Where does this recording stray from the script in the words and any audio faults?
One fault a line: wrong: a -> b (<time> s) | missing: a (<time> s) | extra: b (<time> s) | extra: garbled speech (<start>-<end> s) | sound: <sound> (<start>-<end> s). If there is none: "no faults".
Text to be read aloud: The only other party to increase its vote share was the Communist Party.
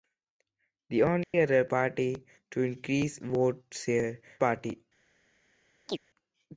sound: dropout (1.2-1.3 s)
missing: its (3.2 s)
missing: was the Communist (4.2 s)
sound: chirp (5.9-6.0 s)